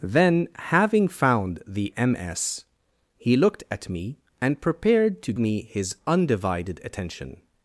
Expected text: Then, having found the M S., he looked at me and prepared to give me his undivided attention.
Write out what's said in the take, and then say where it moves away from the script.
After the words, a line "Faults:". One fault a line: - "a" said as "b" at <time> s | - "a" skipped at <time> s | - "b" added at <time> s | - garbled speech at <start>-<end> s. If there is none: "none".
Then, having found the M S., he looked at me and prepared to me his undivided attention.
Faults:
- "give" skipped at 5.3 s